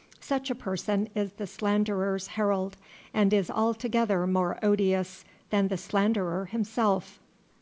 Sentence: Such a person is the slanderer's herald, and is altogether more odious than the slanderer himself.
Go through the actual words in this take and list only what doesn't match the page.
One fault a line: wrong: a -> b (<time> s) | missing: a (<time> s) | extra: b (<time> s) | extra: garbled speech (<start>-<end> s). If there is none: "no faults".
no faults